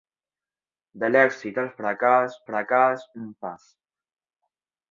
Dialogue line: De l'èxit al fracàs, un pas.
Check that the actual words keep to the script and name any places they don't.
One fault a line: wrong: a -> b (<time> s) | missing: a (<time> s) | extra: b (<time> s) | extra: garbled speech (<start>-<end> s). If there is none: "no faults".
extra: fracàs (2.5 s)